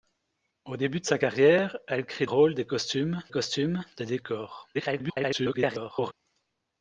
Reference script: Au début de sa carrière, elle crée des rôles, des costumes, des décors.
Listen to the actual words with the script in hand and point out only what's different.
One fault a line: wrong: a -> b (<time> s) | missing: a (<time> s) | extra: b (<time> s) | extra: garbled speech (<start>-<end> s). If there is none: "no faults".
missing: des (2.3 s)
extra: costumes (3.3 s)
extra: garbled speech (4.7-6.1 s)